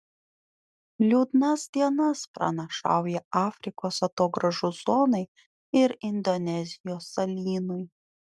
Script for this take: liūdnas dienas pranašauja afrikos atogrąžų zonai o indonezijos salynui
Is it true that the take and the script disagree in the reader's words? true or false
true